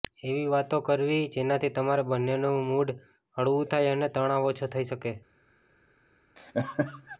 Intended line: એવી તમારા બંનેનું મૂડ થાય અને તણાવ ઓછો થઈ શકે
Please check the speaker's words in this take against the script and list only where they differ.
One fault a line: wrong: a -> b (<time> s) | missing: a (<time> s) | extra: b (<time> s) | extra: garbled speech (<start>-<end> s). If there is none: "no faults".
extra: વાતો કરવી જેનાથી (0.5 s)
extra: હળવું (3.4 s)